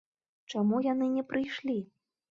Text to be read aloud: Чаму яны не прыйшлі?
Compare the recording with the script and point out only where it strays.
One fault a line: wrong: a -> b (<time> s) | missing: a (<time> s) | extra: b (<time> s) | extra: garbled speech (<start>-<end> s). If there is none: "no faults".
no faults